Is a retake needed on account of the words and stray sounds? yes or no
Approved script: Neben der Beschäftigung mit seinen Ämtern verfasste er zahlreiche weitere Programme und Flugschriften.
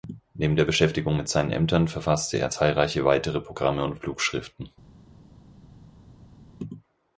no